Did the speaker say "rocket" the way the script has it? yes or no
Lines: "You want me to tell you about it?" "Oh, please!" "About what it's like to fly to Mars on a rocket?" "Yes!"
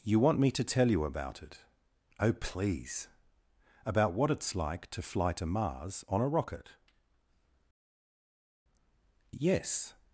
yes